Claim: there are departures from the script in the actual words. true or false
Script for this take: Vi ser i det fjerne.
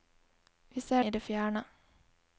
false